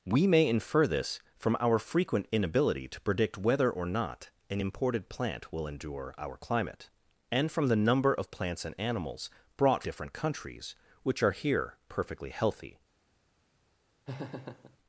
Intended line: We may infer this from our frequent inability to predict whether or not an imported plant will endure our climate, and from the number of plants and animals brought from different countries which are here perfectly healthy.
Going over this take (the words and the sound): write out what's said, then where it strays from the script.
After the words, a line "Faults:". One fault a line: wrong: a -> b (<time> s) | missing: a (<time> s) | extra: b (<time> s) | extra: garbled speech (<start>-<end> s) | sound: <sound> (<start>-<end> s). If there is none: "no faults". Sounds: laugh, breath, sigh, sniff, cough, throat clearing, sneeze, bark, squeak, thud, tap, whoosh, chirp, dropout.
We may infer this from our frequent inability to predict whether or not an imported plant will endure our climate, and from the number of plants and animals brought different countries which are here perfectly healthy.
Faults:
missing: from (9.8 s)
sound: laugh (14.1-14.8 s)